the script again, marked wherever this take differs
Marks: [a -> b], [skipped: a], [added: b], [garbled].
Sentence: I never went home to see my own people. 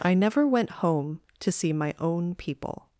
I never went home to see my own people.